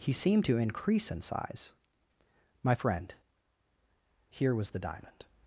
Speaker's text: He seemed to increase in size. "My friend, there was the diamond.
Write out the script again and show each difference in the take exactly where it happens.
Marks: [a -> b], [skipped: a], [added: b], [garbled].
He seemed to increase in size. "My friend, [there -> here] was the diamond.